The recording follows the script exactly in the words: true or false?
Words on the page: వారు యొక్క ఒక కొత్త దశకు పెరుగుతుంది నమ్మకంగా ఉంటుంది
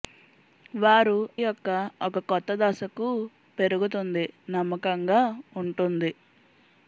true